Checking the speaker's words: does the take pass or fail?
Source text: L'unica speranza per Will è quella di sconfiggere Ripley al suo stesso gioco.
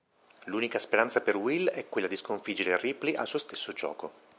pass